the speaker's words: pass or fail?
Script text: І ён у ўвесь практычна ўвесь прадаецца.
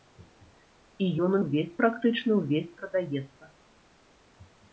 pass